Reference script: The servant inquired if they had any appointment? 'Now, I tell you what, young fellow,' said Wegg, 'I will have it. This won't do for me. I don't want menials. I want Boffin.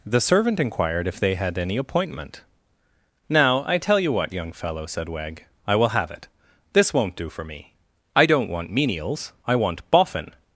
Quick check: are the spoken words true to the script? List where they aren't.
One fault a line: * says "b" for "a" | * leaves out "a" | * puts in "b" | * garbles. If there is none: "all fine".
all fine